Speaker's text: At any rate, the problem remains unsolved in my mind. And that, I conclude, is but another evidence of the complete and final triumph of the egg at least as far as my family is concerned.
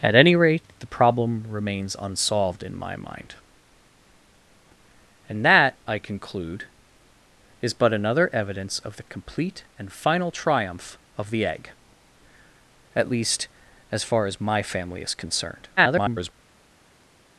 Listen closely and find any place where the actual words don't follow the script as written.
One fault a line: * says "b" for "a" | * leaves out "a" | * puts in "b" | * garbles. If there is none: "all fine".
* garbles